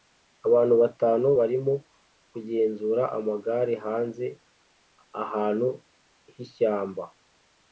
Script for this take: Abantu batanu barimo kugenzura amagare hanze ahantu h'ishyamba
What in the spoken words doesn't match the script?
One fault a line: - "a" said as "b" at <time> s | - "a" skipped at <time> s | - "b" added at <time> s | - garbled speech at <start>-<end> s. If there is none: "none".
none